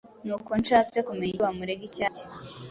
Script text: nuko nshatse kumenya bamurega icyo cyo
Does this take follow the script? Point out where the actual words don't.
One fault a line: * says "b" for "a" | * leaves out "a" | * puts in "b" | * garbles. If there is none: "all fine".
all fine